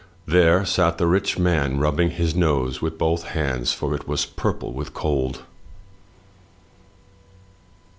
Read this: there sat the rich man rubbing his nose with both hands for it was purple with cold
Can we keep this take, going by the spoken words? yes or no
yes